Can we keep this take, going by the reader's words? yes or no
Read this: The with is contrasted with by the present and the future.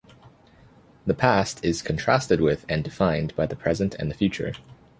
no